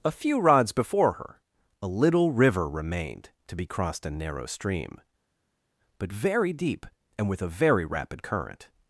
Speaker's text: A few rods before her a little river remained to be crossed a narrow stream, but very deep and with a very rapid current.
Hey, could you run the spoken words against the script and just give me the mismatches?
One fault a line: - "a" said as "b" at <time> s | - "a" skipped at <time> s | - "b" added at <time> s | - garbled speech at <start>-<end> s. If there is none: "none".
none